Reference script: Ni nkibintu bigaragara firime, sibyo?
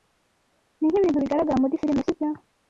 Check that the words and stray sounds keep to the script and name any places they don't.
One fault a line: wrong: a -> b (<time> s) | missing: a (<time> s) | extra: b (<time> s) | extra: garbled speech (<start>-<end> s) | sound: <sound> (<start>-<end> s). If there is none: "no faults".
extra: muri (1.6 s)